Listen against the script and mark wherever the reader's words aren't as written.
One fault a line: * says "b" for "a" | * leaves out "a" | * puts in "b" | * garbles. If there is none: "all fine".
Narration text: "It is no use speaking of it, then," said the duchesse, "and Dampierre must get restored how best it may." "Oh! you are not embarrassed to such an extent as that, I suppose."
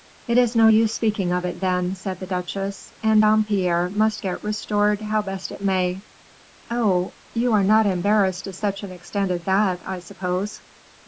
all fine